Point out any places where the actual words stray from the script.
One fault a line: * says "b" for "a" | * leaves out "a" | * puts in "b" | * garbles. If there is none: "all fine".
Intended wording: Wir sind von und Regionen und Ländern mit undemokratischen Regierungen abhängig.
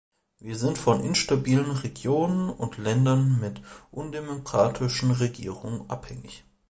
* says "instabilen" for "und"